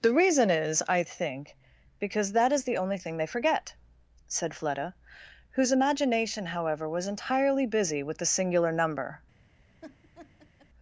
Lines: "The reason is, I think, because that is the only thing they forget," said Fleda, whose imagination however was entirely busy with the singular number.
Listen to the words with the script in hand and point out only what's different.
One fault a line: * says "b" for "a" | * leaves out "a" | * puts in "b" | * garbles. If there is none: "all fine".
all fine